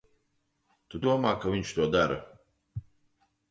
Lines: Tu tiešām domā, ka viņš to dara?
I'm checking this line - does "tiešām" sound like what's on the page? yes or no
no